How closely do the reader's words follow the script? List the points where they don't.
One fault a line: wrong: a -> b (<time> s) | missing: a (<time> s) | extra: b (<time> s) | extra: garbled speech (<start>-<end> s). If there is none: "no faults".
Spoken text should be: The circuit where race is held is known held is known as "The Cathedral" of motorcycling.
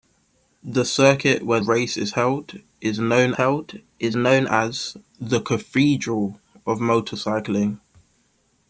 no faults